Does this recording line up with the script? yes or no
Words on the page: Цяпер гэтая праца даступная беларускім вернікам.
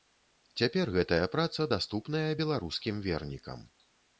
yes